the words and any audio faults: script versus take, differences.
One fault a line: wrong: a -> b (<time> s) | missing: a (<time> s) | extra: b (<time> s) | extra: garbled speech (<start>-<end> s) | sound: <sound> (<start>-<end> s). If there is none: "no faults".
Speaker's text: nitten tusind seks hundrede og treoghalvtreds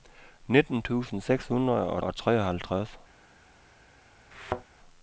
extra: og (2.0 s)
sound: thud (4.3-4.6 s)